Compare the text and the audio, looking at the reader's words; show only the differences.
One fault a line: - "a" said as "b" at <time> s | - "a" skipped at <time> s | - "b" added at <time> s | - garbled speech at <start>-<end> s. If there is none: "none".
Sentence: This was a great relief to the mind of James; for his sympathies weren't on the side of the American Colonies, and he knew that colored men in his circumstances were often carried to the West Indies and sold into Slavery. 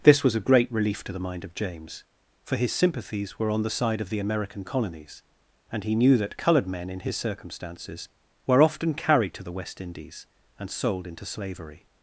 - "weren't" said as "were" at 3.4 s